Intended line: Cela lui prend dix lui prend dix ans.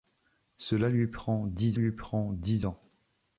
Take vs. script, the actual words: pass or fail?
pass